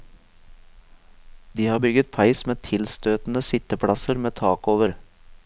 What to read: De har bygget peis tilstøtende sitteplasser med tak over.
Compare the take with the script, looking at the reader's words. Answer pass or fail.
fail